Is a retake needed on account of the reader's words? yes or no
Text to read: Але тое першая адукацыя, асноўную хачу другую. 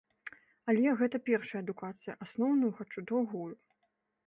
yes